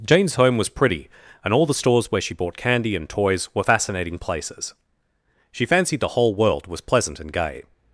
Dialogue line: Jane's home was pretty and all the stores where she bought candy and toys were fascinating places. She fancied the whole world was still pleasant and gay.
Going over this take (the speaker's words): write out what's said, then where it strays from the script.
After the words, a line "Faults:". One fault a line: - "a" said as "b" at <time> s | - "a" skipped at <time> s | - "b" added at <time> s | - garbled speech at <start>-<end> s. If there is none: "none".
Jane's home was pretty and all the stores where she bought candy and toys were fascinating places. She fancied the whole world was pleasant and gay.
Faults:
- "still" skipped at 6.8 s